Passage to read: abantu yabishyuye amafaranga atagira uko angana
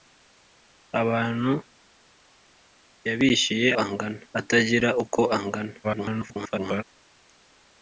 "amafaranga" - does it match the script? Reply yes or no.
no